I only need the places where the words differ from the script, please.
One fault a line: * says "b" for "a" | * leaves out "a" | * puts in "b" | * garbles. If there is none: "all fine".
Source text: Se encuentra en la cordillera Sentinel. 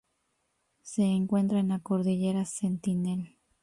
all fine